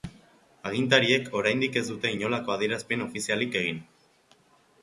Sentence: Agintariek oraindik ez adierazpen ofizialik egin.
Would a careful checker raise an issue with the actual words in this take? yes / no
yes